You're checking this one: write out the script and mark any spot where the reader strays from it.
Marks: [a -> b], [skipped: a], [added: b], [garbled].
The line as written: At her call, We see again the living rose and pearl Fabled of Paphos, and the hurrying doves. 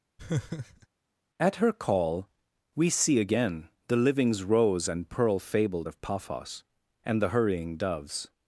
At her call, We see again the [living -> livings] rose and pearl Fabled of Paphos, and the hurrying doves.